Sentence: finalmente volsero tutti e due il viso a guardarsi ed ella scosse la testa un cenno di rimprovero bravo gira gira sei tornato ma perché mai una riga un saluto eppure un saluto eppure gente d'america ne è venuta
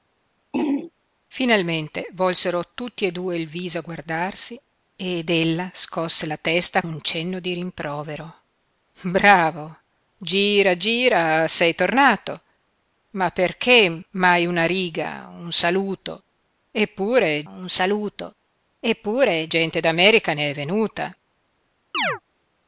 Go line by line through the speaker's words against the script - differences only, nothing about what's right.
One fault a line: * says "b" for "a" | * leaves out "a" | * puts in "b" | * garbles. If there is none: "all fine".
all fine